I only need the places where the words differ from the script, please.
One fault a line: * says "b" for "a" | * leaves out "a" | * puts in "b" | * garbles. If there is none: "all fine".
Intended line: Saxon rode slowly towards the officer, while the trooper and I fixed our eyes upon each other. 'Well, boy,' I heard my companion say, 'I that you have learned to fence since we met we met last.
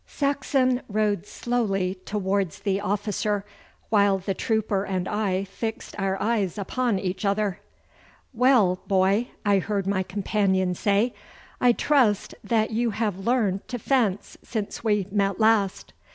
* puts in "trust"
* leaves out "we met"